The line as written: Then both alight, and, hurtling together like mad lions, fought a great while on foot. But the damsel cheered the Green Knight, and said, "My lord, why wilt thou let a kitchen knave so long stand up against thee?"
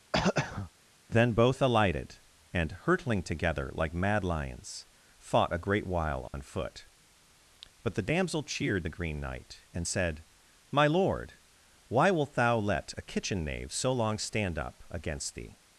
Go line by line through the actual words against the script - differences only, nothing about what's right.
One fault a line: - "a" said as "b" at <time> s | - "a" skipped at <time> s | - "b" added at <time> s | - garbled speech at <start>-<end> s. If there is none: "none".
- "alight" said as "alighted" at 1.6 s